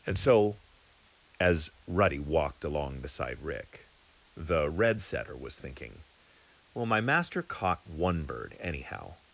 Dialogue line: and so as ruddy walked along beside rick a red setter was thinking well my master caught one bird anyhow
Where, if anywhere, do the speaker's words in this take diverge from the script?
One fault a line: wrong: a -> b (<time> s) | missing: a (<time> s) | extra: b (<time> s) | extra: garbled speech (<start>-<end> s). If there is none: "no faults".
wrong: a -> the (4.3 s)